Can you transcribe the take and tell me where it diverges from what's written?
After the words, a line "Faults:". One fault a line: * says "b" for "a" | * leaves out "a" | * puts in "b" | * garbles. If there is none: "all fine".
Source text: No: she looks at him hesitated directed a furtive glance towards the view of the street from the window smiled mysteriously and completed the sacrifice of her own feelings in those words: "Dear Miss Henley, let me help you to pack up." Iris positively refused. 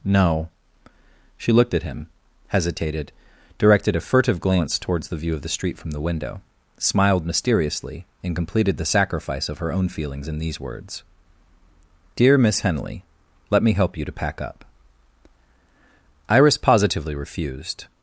No: she looked at him hesitated directed a furtive glance towards the view of the street from the window smiled mysteriously and completed the sacrifice of her own feelings in these words: "Dear Miss Henley, let me help you to pack up." Iris positively refused.
Faults:
* says "looked" for "looks"
* says "these" for "those"